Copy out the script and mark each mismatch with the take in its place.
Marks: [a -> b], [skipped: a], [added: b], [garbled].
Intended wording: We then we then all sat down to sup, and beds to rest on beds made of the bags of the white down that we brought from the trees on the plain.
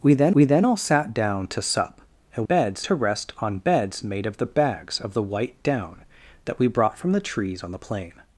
We then we then all sat down to sup, and beds to rest on beds made of the bags of the white down that we brought from the trees on the plain.